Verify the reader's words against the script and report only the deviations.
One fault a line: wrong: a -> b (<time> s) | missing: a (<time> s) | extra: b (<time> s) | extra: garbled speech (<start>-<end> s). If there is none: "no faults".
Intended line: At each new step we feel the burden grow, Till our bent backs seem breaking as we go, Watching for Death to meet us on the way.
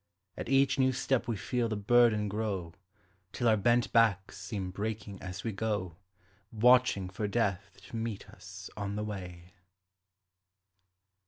no faults